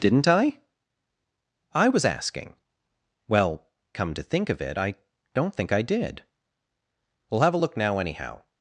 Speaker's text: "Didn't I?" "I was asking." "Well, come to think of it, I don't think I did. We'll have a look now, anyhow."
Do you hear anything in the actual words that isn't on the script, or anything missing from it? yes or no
no